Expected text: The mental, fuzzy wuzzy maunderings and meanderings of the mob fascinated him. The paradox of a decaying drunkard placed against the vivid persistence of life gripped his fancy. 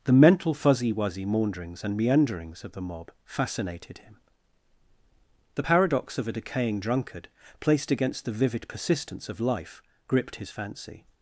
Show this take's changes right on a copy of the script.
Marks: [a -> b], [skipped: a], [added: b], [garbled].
The mental, fuzzy wuzzy maunderings and meanderings of the mob fascinated him. The paradox of a decaying drunkard placed against the vivid persistence of life gripped his fancy.